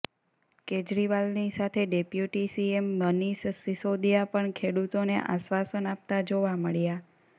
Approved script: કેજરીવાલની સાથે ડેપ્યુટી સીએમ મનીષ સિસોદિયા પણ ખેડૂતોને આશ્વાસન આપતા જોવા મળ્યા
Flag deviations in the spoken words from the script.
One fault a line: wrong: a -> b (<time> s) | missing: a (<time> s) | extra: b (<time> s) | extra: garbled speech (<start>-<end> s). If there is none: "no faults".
no faults